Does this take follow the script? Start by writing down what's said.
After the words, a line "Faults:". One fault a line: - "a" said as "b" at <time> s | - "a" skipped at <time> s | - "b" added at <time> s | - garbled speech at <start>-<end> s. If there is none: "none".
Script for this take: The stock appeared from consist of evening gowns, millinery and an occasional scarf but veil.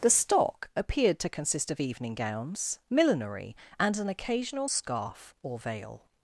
The stock appeared to consist of evening gowns, millinery and an occasional scarf or veil.
Faults:
- "from" said as "to" at 1.2 s
- "but" said as "or" at 5.4 s